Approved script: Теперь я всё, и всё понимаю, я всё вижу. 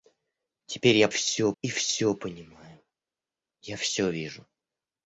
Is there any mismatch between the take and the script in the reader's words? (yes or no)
no